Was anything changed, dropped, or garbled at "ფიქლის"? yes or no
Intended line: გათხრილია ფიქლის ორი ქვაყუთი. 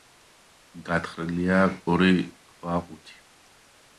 yes